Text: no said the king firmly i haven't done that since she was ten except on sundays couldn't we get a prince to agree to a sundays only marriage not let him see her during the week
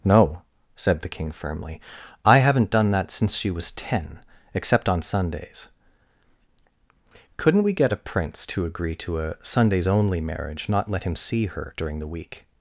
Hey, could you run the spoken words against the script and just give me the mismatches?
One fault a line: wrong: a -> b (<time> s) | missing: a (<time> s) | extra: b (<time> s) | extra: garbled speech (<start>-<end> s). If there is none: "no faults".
no faults